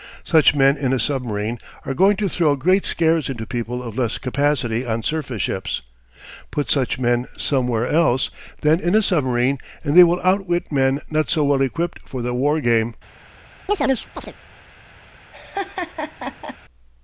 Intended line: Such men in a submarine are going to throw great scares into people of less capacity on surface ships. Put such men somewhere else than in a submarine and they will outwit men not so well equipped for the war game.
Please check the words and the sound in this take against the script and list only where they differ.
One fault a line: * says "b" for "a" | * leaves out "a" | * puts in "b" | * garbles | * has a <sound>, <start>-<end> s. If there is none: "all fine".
* has a chirp, 13.7-14.3 s
* has a laugh, 15.3-16.6 s